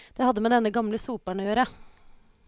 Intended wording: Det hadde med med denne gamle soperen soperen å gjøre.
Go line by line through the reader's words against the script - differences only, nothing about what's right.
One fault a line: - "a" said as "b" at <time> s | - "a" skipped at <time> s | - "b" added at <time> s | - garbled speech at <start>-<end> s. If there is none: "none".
- "med" skipped at 0.5 s
- "soperen" skipped at 1.4 s